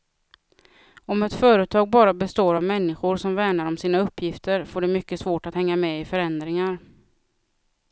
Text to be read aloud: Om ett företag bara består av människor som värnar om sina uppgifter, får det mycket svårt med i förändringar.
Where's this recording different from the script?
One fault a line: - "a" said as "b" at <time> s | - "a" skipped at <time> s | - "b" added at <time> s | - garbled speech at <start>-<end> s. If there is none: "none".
- "att hänga" added at 5.5 s